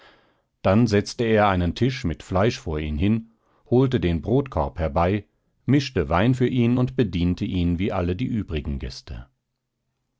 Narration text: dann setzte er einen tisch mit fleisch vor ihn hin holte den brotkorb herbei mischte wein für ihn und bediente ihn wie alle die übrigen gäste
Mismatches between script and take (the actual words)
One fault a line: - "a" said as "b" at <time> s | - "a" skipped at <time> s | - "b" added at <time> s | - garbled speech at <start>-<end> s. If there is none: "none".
none